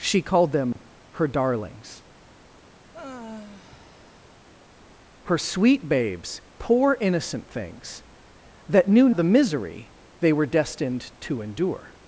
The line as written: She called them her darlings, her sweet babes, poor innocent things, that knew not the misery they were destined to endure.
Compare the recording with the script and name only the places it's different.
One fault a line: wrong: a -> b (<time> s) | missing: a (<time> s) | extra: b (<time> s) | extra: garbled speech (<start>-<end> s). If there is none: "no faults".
missing: not (9.1 s)